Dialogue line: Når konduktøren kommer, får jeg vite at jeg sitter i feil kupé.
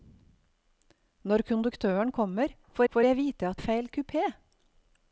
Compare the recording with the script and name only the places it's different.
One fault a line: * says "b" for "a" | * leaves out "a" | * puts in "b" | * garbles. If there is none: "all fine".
* puts in "får"
* leaves out "jeg sitter"